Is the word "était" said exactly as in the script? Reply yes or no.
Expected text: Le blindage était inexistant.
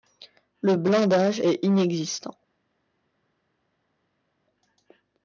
no